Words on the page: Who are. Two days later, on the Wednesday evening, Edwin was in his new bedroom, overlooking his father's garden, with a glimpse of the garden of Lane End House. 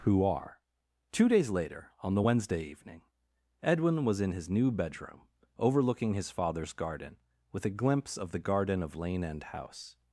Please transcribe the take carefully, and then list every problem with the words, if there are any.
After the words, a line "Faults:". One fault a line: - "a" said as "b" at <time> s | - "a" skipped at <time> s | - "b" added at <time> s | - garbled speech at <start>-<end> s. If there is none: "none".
Who are. Two days later, on the Wednesday evening, Edwin was in his new bedroom, overlooking his father's garden, with a glimpse of the garden of Lane End House.
Faults:
none